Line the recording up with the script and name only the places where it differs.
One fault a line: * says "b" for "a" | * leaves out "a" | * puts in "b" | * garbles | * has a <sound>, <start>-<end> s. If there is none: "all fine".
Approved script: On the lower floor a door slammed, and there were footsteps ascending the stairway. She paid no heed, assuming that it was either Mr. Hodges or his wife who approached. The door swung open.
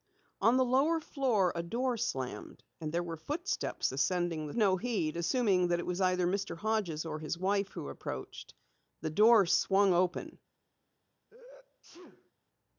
* leaves out "stairway She paid"
* has a sneeze, 11.3-12.3 s